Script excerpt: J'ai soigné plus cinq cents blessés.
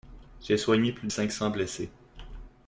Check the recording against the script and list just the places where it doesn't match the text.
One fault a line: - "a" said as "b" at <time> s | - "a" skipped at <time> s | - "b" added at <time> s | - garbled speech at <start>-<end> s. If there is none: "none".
none